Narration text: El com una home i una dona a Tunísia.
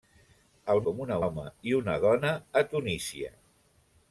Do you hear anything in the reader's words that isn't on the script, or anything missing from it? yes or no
no